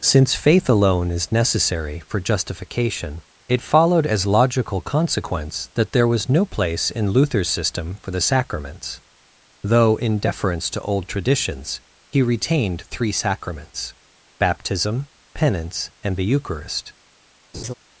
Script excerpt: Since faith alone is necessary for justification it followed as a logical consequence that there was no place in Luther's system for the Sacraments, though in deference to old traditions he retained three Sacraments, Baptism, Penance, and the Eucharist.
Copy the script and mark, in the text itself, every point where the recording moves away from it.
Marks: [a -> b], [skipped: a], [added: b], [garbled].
Since faith alone is necessary for justification it followed as [skipped: a] logical consequence that there was no place in Luther's system for the Sacraments, though in deference to old traditions he retained three Sacraments, Baptism, Penance, and the Eucharist.